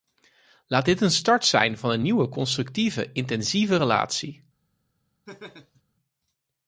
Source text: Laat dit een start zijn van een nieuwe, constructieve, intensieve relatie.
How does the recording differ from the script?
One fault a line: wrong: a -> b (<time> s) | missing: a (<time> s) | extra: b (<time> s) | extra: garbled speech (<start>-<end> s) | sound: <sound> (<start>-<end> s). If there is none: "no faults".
sound: laugh (5.3-5.8 s)